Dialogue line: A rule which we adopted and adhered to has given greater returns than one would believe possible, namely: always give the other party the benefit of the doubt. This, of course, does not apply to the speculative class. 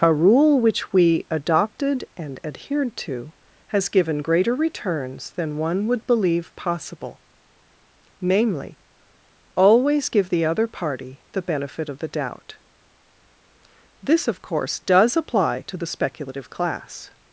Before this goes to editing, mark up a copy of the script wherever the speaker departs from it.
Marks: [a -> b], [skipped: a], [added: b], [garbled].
A rule which we adopted and adhered to has given greater returns than one would believe possible, namely: always give the other party the benefit of the doubt. This, of course, does [skipped: not] apply to the speculative class.